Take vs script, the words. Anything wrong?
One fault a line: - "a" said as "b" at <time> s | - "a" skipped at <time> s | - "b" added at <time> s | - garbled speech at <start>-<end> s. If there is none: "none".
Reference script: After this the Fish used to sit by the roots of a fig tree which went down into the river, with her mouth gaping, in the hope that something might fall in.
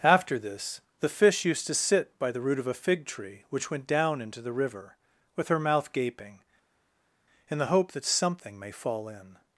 - "roots" said as "root" at 2.4 s
- "might" said as "may" at 8.6 s